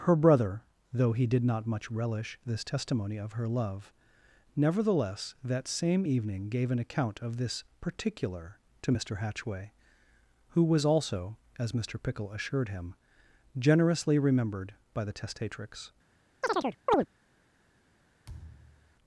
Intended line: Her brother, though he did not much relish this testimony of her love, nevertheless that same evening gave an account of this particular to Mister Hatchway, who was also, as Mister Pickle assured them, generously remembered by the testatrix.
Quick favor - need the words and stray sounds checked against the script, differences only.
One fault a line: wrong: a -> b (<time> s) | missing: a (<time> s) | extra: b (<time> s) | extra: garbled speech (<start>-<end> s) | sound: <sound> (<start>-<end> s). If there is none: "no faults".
wrong: them -> him (12.7 s)
sound: chirp (16.4-17.1 s)
sound: thud (18.3-19.0 s)